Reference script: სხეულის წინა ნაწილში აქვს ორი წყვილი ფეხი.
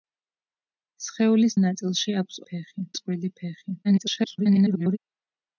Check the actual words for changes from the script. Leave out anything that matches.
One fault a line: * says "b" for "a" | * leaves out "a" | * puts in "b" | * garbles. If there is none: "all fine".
* leaves out "წინა"
* says "ფეხი" for "ორი"
* garbles